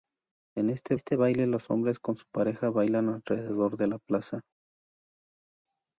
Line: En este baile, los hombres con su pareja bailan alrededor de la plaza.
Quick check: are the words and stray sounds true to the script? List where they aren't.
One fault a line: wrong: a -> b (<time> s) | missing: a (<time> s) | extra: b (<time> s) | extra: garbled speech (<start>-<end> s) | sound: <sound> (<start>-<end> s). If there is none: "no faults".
extra: este (0.9 s)